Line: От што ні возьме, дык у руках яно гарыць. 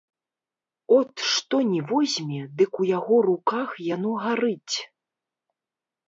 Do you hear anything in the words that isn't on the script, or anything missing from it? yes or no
yes